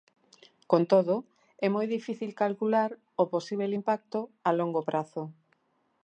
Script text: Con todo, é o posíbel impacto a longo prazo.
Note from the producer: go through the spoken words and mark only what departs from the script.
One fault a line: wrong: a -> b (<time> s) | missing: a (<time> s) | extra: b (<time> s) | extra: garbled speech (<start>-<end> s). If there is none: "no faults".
extra: moi difícil calcular (1.8 s)